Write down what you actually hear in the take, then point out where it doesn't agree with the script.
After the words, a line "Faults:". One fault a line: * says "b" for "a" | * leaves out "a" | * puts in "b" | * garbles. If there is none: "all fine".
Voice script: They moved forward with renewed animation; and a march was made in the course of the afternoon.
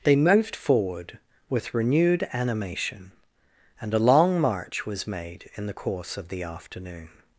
They moved forward with renewed animation; and a long march was made in the course of the afternoon.
Faults:
* puts in "long"